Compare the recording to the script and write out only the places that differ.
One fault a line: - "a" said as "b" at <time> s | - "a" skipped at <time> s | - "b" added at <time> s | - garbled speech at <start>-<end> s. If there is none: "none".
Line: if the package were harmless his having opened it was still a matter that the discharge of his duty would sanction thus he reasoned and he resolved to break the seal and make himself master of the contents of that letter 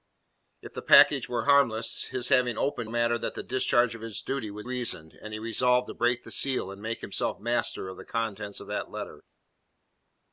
- "it was still" skipped at 2.9 s
- "sanction thus he" skipped at 4.7 s